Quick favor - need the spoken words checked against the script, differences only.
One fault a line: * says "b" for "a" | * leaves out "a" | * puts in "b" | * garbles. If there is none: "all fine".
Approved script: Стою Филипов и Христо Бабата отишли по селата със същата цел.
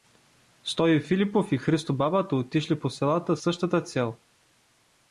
* leaves out "със"